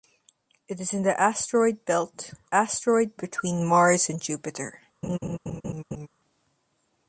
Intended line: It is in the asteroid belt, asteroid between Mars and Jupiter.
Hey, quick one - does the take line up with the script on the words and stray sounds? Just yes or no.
no